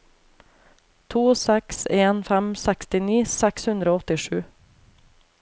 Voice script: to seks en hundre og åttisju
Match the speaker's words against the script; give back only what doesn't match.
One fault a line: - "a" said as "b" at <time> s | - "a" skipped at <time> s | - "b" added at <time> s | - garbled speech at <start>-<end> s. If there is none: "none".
- "fem sekstini seks" added at 2.3 s